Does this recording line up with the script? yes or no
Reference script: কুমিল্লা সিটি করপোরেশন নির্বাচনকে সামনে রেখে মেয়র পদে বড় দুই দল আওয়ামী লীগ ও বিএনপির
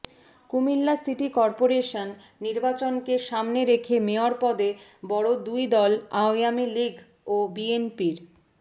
yes